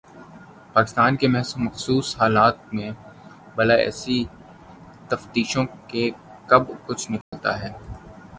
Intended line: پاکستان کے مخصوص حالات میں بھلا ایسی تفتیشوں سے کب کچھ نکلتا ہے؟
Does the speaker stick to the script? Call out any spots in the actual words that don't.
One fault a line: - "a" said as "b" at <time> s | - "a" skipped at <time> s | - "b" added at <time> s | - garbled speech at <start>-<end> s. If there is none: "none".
none